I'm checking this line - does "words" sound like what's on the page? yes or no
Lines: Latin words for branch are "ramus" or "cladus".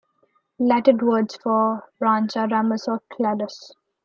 yes